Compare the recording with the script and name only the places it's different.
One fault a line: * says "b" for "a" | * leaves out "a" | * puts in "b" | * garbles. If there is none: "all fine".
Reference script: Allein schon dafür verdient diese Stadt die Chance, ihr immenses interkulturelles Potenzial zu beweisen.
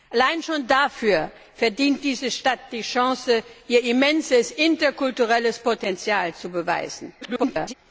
* garbles